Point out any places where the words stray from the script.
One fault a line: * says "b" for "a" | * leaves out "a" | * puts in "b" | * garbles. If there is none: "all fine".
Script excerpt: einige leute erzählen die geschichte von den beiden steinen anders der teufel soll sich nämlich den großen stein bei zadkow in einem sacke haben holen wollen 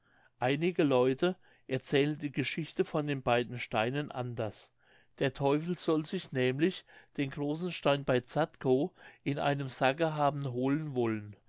all fine